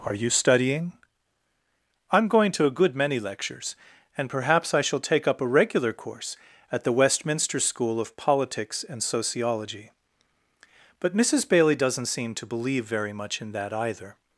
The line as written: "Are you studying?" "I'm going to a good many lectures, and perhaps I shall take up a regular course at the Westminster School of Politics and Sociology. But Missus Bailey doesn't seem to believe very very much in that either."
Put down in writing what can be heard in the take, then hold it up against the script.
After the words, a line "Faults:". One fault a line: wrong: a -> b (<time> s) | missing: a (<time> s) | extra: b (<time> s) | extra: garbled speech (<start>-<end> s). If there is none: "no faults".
"Are you studying?" "I'm going to a good many lectures, and perhaps I shall take up a regular course at the Westminster School of Politics and Sociology. But Missus Bailey doesn't seem to believe very much in that either."
Faults:
missing: very (13.1 s)